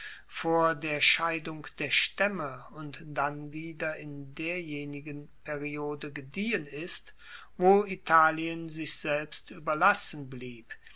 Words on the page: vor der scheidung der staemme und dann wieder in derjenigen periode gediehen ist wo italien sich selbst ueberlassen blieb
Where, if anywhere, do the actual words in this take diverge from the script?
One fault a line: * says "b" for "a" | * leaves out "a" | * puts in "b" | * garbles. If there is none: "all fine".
all fine